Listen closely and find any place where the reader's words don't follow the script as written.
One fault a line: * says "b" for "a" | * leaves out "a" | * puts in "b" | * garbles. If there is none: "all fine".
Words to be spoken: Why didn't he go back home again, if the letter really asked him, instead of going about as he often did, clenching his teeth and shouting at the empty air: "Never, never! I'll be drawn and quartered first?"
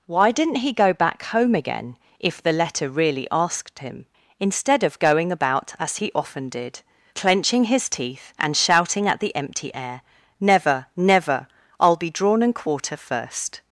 * says "quarter" for "quartered"